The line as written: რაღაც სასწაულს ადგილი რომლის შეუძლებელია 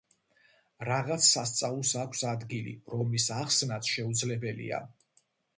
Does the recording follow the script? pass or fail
fail